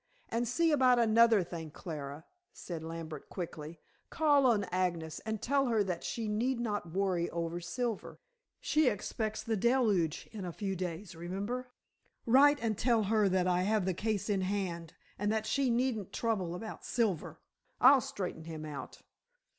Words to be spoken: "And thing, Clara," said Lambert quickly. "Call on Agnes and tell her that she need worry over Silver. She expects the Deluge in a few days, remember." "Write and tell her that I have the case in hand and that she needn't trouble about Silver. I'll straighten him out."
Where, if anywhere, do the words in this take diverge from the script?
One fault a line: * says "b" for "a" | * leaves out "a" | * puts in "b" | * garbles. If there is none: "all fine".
* puts in "see about another"
* puts in "not"